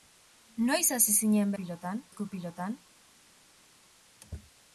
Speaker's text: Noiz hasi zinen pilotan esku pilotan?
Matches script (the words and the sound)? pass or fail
pass